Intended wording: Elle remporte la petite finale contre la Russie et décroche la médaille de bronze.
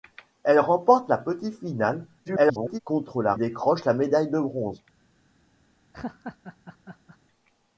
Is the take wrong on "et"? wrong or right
wrong